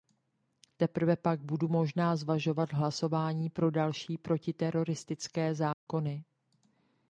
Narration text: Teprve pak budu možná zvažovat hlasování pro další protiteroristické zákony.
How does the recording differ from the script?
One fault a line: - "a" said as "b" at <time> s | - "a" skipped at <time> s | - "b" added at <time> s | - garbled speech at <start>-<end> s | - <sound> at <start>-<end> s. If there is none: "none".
- dropout at 5.7-5.9 s